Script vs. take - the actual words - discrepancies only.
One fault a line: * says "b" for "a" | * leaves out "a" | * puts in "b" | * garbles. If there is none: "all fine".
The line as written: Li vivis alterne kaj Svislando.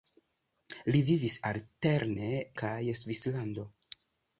all fine